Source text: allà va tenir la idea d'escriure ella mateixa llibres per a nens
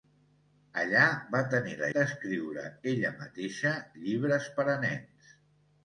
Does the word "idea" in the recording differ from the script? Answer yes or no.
yes